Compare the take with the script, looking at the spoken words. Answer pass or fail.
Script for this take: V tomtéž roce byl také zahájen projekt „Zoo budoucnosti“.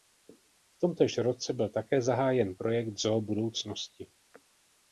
pass